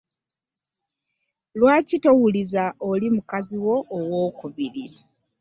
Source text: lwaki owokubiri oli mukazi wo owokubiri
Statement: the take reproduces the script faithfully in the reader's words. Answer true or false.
false